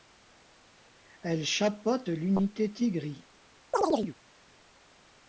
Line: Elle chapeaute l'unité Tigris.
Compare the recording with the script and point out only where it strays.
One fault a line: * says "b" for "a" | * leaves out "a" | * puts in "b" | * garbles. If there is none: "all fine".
all fine